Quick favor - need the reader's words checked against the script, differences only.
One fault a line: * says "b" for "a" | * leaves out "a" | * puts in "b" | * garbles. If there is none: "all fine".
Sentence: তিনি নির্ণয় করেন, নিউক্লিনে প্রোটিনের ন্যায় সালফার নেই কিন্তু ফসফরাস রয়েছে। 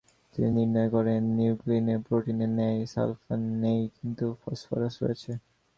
all fine